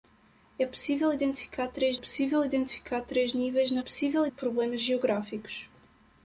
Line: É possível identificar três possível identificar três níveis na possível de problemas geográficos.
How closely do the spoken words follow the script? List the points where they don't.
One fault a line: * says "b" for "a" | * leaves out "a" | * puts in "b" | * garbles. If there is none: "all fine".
all fine